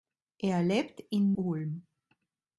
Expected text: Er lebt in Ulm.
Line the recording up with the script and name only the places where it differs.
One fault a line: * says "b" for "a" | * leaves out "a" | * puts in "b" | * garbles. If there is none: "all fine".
all fine